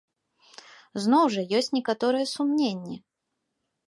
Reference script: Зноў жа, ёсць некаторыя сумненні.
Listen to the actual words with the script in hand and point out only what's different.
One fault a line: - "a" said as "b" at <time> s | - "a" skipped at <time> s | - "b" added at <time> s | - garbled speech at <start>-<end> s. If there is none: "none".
none